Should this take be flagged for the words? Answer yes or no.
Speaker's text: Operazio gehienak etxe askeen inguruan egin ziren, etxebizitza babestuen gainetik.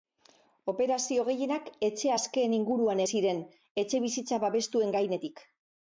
yes